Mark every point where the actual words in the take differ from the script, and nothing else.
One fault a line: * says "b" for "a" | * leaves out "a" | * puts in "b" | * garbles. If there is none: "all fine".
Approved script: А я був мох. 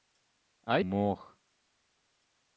* leaves out "я був"